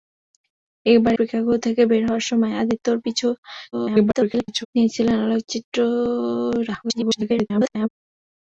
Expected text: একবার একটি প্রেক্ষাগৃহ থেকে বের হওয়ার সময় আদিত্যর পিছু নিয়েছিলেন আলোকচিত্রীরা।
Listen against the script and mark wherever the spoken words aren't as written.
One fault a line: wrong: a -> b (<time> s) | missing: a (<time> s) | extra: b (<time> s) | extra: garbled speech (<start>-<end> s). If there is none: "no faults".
missing: একটি (1.1 s)
extra: garbled speech (3.7-4.7 s)
extra: garbled speech (6.8-7.9 s)